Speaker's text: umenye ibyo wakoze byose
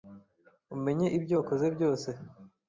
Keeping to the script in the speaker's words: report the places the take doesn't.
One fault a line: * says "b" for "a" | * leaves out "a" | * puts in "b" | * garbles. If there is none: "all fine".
all fine